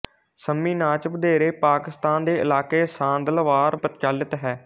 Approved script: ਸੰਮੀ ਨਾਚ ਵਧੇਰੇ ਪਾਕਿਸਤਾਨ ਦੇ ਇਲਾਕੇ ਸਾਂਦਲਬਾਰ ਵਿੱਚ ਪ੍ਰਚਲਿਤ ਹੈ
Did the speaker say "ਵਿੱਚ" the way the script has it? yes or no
no